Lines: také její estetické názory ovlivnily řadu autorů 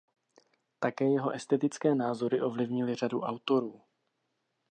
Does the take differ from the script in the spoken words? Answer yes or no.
yes